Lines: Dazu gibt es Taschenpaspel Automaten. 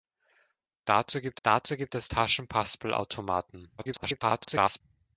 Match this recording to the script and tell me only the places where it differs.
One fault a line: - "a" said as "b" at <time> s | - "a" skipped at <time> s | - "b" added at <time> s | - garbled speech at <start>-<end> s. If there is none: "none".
- "dazu gibt" added at 1.4 s
- garbled speech at 3.8-4.8 s